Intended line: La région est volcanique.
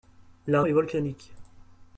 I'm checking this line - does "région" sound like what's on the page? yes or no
no